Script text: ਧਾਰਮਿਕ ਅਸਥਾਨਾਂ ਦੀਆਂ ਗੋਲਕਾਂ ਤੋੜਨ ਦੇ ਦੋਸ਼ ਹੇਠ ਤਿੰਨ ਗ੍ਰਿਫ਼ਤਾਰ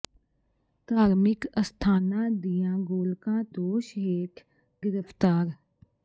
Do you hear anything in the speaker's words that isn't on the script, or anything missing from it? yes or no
yes